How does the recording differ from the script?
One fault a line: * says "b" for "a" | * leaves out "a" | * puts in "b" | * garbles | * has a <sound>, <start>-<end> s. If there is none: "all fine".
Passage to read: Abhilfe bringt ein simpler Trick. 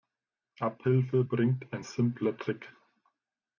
all fine